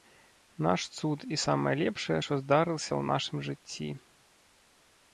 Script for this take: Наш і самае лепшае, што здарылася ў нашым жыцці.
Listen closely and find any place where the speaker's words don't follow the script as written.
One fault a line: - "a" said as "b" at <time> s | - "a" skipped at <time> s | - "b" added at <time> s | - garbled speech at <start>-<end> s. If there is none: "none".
- "цуд" added at 1.0 s